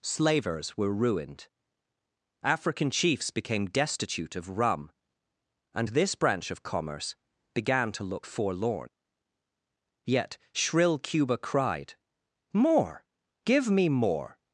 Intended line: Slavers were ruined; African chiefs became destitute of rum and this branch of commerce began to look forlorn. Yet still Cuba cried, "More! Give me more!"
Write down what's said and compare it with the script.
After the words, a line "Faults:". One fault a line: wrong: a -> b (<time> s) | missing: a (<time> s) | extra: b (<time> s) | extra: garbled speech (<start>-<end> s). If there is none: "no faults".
Slavers were ruined; African chiefs became destitute of rum and this branch of commerce began to look forlorn. Yet shrill Cuba cried, "More! Give me more!"
Faults:
wrong: still -> shrill (10.5 s)